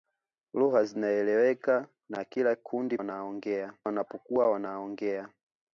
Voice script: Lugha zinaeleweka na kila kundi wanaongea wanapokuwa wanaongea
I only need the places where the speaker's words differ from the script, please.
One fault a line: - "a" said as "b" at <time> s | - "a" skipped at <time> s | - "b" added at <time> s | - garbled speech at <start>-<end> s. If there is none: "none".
none